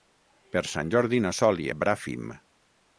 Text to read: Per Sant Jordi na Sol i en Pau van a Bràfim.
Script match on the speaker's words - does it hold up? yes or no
no